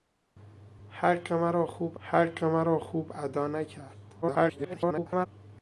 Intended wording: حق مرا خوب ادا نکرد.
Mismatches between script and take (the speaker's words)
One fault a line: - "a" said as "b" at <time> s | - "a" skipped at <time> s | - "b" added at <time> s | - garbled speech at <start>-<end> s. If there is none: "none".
- "حق مرا خوب" added at 2.0 s
- garbled speech at 4.2-5.3 s